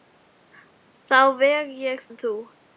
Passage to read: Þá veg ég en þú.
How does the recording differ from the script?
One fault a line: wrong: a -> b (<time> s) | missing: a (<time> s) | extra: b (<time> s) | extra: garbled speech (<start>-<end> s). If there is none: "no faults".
no faults